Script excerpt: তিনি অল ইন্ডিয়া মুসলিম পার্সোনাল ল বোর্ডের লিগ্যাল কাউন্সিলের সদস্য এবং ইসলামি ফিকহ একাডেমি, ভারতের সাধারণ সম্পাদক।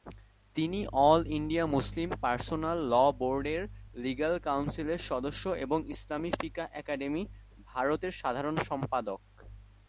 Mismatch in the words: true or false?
false